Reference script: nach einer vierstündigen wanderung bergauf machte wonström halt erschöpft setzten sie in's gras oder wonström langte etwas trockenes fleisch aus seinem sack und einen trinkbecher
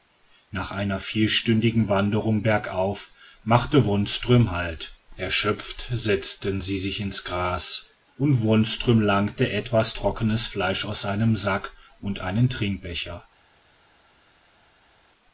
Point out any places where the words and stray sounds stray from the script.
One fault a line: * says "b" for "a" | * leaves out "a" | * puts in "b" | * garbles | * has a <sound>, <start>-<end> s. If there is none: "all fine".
* puts in "sich"
* says "und" for "oder"